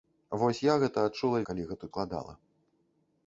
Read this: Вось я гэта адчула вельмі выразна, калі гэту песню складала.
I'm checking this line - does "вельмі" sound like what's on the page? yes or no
no